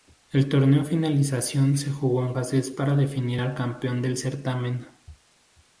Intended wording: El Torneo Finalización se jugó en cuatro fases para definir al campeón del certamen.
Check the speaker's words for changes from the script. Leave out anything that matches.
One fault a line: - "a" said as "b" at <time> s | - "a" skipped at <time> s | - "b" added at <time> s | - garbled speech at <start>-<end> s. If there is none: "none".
- "cuatro" skipped at 2.3 s